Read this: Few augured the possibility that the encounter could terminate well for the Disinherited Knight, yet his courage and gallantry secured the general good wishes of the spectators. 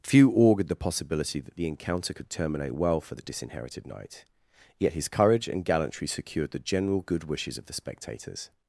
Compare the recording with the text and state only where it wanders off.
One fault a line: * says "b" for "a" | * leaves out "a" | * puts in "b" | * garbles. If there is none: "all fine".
all fine